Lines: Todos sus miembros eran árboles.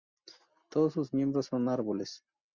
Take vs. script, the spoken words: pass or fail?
fail